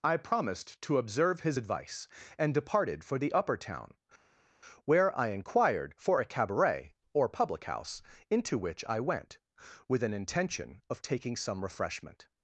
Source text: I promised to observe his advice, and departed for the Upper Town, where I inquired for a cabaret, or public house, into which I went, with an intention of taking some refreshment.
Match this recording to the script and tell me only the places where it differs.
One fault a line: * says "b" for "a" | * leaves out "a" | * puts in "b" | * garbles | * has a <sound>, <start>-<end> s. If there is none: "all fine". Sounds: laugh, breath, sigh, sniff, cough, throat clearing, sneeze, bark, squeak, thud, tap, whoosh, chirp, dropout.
all fine